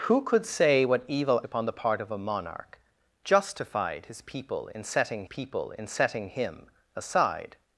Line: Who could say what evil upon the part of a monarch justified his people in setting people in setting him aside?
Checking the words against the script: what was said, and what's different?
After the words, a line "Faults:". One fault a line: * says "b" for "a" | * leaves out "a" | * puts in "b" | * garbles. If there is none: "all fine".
Who could say what evil upon the part of a monarch justified his people in setting people in setting him aside?
Faults:
all fine